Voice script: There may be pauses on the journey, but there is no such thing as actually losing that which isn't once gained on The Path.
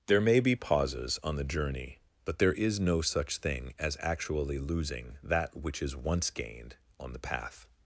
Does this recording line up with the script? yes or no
no